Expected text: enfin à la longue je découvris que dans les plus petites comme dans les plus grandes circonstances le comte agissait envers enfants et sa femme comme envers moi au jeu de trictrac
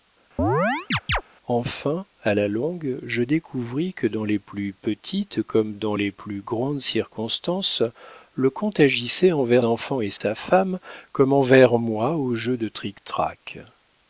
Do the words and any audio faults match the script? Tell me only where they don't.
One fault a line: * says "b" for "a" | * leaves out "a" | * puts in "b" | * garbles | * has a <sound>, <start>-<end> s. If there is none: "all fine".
* has a chirp, 0.4-1.2 s
* has a dropout, 10.2-10.2 s